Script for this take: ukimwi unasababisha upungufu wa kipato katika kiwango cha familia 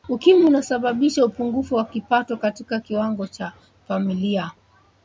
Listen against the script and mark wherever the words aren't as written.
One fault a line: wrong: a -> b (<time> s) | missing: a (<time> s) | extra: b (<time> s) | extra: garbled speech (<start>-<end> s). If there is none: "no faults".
no faults